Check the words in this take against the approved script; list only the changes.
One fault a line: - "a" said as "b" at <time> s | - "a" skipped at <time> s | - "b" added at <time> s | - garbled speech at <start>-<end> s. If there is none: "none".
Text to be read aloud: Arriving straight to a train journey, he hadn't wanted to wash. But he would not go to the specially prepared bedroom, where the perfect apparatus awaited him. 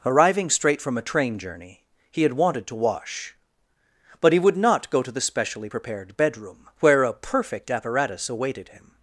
- "to" said as "from" at 0.8 s
- "hadn't" said as "had" at 2.2 s
- "the" said as "a" at 7.0 s